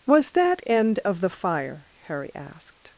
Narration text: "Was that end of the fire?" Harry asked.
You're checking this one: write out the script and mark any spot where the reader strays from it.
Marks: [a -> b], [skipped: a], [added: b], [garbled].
"Was that end of the fire?" Harry asked.